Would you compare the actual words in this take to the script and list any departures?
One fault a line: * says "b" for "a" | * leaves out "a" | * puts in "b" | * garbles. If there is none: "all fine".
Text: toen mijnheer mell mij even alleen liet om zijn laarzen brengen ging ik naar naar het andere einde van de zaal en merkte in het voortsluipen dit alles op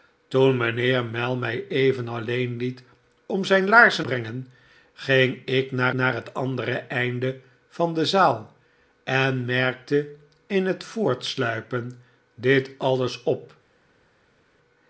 all fine